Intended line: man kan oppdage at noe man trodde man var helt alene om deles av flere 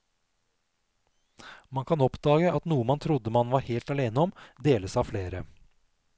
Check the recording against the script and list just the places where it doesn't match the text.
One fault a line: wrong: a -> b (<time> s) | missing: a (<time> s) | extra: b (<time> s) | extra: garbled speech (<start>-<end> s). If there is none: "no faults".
no faults